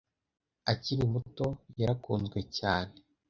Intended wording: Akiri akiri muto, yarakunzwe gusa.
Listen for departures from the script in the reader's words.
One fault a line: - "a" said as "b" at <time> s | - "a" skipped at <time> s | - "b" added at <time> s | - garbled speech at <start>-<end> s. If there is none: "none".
- "akiri" skipped at 1.0 s
- "gusa" said as "cyane" at 2.6 s